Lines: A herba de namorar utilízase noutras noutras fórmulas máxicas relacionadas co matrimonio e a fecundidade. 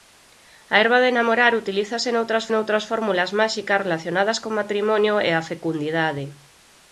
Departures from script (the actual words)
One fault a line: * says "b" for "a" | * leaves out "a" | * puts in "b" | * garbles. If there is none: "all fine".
all fine